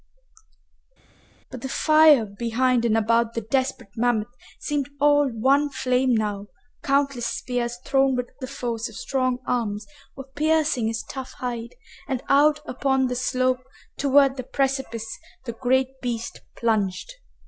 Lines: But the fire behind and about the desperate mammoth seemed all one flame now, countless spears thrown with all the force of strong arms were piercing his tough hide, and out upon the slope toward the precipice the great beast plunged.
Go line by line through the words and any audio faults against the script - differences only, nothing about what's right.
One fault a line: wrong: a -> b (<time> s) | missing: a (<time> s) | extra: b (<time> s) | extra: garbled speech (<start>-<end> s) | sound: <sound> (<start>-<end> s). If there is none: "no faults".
missing: all (8.3 s)